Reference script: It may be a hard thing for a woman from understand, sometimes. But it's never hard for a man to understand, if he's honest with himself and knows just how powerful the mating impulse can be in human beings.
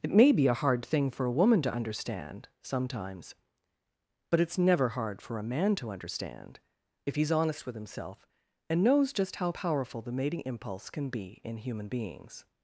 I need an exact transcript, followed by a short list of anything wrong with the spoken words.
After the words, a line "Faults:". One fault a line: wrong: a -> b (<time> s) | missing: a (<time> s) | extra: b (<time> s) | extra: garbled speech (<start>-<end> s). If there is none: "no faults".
It may be a hard thing for a woman to understand, sometimes. But it's never hard for a man to understand, if he's honest with himself and knows just how powerful the mating impulse can be in human beings.
Faults:
wrong: from -> to (1.6 s)